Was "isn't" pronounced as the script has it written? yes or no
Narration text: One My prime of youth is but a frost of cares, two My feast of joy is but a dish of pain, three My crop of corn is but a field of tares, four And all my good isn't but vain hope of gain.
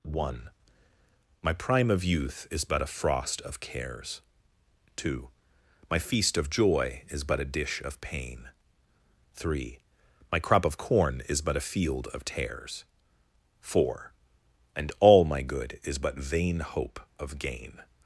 no